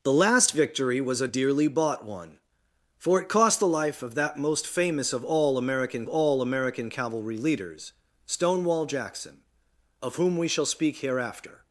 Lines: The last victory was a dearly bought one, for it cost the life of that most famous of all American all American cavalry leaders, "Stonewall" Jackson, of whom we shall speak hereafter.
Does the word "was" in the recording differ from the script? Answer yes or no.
no